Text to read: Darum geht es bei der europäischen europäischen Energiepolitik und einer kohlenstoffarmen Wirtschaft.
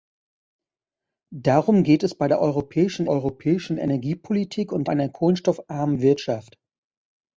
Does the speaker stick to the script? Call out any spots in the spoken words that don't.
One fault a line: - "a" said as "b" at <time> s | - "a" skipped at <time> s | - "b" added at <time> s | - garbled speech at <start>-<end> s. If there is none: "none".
none